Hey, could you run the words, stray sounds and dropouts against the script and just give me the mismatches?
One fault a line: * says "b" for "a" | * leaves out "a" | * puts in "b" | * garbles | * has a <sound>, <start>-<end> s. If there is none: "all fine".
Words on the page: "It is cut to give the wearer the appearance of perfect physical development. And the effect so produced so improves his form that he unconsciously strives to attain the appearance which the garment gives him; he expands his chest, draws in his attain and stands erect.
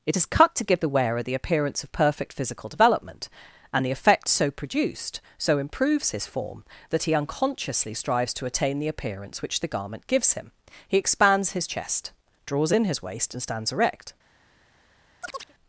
* says "waist" for "attain"
* has a chirp, 15.2-15.5 s